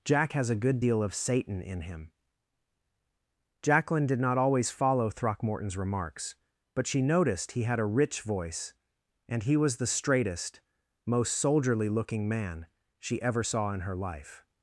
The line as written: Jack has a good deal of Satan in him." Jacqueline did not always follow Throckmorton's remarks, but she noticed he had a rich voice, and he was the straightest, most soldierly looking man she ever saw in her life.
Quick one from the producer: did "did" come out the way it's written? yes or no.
yes